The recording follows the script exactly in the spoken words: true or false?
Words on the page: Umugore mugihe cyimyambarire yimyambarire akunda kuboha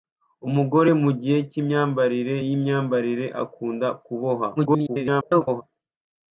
false